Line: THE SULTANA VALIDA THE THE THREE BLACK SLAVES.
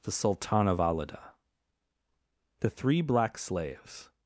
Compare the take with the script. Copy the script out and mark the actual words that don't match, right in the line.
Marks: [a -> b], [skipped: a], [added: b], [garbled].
THE SULTANA VALIDA THE [skipped: THE] THREE BLACK SLAVES.